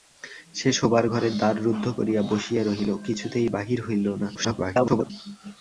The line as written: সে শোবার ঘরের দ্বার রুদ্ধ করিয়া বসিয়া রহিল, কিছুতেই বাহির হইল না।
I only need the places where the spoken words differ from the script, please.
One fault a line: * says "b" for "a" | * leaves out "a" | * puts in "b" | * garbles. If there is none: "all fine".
* garbles